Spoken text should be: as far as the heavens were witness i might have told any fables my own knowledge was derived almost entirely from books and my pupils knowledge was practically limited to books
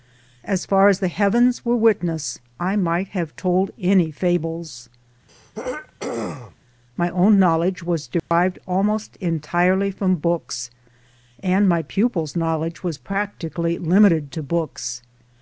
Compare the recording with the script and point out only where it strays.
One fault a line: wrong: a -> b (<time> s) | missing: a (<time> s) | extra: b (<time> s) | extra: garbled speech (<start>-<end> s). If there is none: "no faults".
no faults